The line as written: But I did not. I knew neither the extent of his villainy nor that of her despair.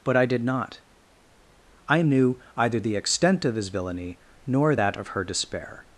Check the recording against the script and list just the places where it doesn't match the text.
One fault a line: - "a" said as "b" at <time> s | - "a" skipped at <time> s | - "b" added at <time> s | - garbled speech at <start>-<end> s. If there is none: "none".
- "neither" said as "either" at 2.5 s